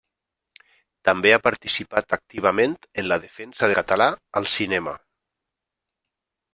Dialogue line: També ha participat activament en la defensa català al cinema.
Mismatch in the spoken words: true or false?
false